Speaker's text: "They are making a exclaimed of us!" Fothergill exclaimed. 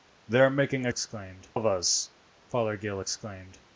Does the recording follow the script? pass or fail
pass